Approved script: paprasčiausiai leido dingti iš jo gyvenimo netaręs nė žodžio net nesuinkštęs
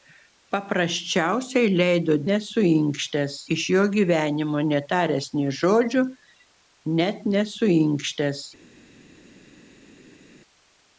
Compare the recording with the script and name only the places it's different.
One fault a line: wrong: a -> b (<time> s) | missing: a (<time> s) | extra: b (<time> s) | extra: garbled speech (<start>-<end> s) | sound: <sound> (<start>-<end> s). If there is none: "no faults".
wrong: dingti -> nesuinkštęs (2.3 s)